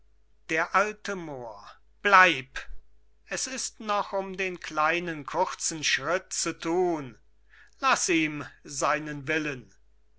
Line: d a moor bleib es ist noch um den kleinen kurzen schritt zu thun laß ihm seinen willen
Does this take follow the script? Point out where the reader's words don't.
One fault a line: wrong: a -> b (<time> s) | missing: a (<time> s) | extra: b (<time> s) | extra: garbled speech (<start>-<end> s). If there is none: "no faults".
no faults